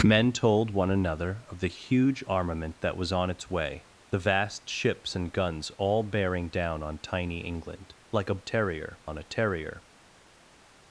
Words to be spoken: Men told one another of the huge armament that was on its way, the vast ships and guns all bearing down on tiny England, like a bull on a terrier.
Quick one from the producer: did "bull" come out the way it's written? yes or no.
no